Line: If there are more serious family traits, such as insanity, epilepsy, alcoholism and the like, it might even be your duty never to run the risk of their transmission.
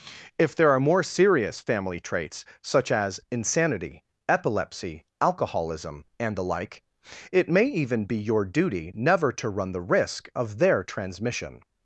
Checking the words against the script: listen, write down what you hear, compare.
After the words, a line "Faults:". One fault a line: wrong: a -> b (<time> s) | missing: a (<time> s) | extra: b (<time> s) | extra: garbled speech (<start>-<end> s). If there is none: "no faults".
If there are more serious family traits, such as insanity, epilepsy, alcoholism and the like, it may even be your duty never to run the risk of their transmission.
Faults:
wrong: might -> may (7.5 s)